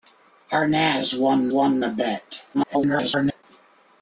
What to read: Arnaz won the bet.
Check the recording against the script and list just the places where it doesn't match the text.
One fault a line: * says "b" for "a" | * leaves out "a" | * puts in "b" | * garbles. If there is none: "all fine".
* puts in "won"
* garbles